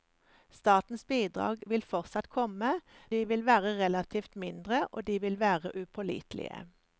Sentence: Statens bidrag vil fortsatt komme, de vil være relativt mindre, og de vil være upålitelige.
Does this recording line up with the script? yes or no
yes